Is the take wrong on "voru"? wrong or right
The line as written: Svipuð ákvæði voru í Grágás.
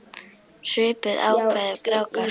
wrong